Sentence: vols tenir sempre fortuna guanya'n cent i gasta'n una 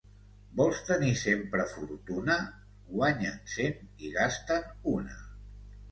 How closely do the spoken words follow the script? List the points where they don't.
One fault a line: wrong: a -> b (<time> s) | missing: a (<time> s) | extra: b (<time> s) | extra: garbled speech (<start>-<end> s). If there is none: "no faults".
no faults